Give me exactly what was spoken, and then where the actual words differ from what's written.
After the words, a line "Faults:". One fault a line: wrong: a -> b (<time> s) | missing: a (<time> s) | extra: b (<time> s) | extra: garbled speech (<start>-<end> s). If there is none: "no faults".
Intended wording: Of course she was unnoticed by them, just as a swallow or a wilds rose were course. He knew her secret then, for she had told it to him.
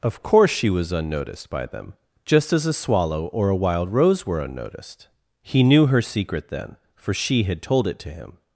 Of course she was unnoticed by them, just as a swallow or a wild rose were unnoticed. He knew her secret then, for she had told it to him.
Faults:
wrong: wilds -> wild (3.5 s)
wrong: course -> unnoticed (4.4 s)